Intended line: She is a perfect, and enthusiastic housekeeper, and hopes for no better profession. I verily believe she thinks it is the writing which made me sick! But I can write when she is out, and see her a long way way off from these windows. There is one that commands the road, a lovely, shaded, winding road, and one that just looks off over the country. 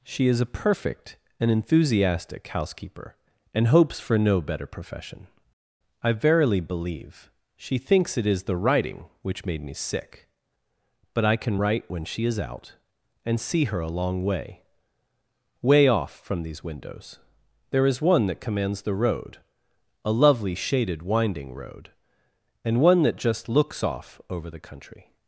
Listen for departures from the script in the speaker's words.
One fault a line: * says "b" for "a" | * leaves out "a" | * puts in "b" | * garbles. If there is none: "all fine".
all fine